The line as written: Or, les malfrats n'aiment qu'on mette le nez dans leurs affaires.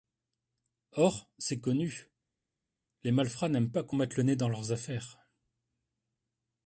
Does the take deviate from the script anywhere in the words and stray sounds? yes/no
yes